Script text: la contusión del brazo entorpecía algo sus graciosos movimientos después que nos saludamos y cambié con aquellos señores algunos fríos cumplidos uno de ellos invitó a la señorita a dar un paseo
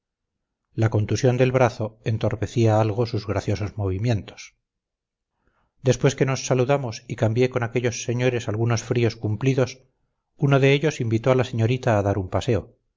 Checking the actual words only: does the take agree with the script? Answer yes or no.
yes